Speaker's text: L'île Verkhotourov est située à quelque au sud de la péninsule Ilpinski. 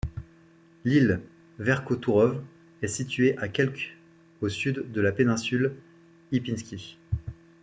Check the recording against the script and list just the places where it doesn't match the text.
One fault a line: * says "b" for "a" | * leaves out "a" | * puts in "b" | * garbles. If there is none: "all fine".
all fine